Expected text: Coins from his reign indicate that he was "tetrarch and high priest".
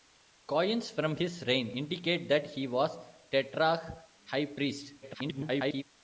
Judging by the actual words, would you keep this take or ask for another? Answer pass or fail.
fail